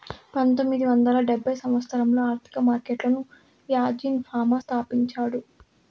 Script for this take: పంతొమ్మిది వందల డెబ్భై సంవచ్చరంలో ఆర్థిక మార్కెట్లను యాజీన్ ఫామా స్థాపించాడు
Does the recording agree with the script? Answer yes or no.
yes